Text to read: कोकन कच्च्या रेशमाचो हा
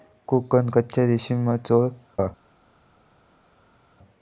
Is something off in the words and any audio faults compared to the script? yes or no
no